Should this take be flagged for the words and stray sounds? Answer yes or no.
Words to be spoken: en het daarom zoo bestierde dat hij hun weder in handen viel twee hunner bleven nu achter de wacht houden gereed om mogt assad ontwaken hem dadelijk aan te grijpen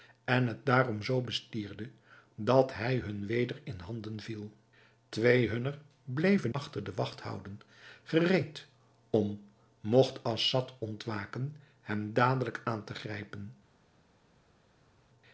yes